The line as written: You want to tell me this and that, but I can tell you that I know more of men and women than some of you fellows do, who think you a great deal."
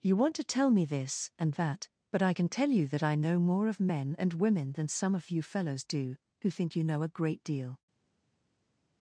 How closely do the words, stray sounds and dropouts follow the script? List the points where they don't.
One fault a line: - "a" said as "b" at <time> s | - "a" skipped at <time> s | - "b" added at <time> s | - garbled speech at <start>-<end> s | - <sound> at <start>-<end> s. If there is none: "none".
- "know" added at 6.8 s